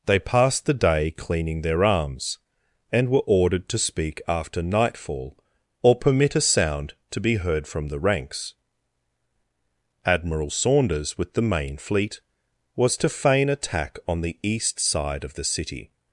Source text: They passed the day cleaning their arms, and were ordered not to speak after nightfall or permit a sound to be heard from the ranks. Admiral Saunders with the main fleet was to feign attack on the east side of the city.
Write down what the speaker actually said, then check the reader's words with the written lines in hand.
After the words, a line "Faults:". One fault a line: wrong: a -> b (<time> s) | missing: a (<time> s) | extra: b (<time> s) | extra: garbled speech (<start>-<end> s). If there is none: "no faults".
They passed the day cleaning their arms, and were ordered to speak after nightfall or permit a sound to be heard from the ranks. Admiral Saunders with the main fleet was to feign attack on the east side of the city.
Faults:
missing: not (3.7 s)